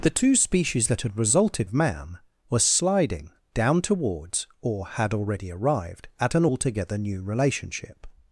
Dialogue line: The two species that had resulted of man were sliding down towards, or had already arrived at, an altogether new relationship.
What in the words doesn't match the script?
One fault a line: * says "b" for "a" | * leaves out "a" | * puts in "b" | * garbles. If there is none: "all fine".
all fine